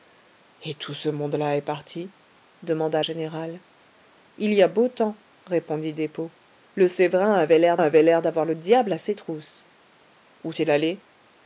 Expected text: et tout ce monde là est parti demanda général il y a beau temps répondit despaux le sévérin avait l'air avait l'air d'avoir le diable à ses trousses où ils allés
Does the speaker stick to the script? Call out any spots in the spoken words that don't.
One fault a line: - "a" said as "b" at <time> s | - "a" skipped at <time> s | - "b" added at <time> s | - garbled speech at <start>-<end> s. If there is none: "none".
none